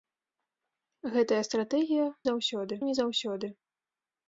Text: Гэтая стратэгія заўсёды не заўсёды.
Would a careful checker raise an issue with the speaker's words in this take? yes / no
no